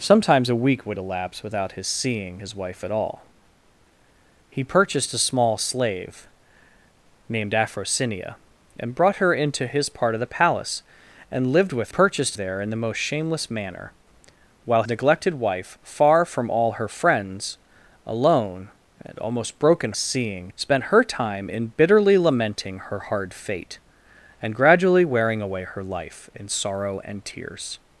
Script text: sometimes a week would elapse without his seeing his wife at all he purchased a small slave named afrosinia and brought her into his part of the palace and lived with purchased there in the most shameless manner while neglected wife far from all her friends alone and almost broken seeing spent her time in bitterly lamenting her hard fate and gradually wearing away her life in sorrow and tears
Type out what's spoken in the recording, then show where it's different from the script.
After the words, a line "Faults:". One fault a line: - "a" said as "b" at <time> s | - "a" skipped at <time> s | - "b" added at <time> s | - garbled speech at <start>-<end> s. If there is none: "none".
sometimes a week would elapse without his seeing his wife at all he purchased a small slave named afrosinia and brought her into his part of the palace and lived with purchased there in the most shameless manner while neglected wife far from all her friends alone and almost broken seeing spent her time in bitterly lamenting her hard fate and gradually wearing away her life in sorrow and tears
Faults:
none